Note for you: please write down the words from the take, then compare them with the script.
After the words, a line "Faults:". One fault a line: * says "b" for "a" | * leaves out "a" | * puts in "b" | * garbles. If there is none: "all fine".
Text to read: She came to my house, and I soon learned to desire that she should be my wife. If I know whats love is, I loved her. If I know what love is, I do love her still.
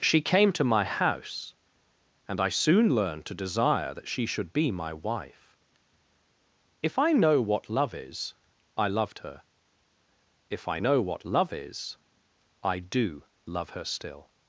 She came to my house, and I soon learned to desire that she should be my wife. If I know what love is, I loved her. If I know what love is, I do love her still.
Faults:
* says "what" for "whats"